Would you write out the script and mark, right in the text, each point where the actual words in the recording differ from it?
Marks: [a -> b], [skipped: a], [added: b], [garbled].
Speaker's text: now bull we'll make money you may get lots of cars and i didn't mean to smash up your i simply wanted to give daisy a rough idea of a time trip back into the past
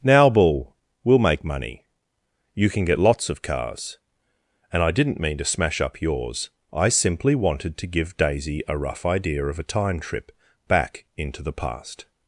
now bull we'll make money you [may -> can] get lots of cars and i didn't mean to smash up [your -> yours] i simply wanted to give daisy a rough idea of a time trip back into the past